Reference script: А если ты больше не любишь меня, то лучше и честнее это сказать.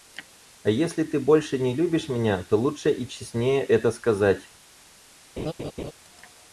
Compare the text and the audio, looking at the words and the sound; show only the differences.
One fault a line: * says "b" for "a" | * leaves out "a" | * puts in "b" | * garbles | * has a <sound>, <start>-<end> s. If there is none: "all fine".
* has a laugh, 5.4-5.9 s